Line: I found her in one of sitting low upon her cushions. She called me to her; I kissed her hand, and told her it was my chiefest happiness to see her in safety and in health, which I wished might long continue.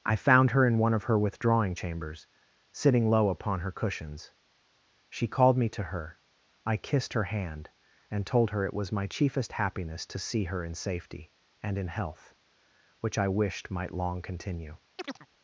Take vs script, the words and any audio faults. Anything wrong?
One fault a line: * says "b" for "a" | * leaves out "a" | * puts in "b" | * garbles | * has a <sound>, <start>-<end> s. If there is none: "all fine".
* puts in "her withdrawing chambers"
* has a chirp, 15.0-15.3 s